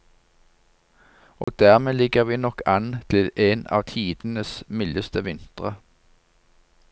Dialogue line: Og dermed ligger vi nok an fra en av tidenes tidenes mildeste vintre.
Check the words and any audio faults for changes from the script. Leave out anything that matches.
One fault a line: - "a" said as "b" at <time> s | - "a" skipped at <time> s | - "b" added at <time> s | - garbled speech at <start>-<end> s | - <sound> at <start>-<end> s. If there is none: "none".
- dropout at 1.4-1.5 s
- "fra" said as "til" at 3.1 s
- "tidenes" skipped at 4.6 s